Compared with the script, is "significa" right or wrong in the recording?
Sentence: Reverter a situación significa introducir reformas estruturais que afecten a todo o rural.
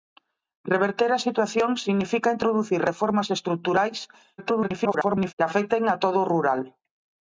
right